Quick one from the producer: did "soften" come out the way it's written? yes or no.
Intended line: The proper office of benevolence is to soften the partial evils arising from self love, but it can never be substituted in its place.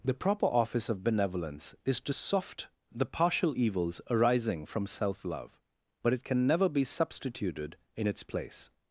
no